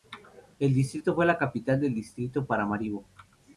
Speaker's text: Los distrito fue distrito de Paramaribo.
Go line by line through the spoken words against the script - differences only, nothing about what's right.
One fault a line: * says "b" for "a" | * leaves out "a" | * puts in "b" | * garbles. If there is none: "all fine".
* says "El" for "Los"
* puts in "la capital del"